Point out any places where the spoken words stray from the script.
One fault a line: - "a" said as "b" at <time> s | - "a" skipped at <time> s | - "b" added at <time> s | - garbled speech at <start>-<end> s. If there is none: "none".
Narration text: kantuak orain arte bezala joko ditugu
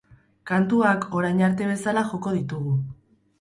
none